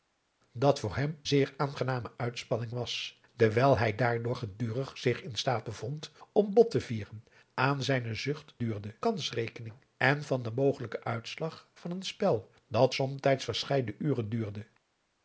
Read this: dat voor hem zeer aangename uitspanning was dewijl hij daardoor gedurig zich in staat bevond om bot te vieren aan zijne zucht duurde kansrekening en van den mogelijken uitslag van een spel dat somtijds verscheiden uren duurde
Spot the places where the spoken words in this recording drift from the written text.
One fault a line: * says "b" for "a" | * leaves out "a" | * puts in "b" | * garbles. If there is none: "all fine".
all fine